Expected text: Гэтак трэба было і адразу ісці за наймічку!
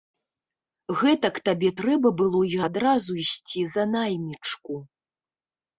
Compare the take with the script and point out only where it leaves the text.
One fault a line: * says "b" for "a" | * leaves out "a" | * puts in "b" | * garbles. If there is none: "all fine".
* puts in "табе"